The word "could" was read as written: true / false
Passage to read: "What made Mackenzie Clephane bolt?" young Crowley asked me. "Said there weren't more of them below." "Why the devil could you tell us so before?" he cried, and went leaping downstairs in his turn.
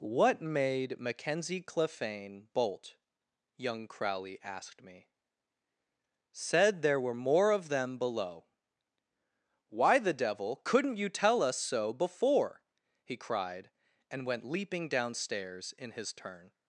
false